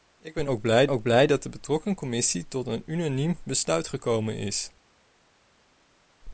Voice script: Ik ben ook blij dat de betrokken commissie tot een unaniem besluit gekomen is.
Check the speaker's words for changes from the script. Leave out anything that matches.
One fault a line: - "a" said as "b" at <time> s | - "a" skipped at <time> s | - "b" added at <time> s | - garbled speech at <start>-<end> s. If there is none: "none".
- "ook blij" added at 0.9 s